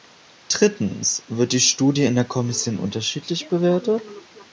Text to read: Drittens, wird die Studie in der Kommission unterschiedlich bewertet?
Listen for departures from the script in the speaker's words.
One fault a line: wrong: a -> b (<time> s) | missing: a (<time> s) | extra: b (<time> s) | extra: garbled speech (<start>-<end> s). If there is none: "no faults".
no faults